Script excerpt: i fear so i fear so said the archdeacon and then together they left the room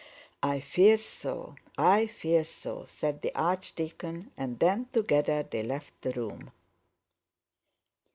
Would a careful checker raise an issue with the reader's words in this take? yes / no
no